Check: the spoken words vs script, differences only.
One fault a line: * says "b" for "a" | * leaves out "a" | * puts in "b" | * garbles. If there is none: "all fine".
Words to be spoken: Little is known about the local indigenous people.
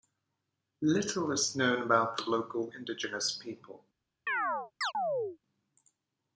all fine